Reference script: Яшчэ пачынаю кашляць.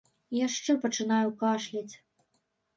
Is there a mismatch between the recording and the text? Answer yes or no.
no